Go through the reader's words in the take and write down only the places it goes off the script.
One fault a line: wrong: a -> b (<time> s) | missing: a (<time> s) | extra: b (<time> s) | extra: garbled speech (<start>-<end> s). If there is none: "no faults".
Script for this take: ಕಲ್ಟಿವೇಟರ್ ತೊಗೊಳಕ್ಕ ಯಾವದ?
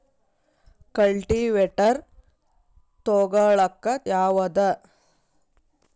no faults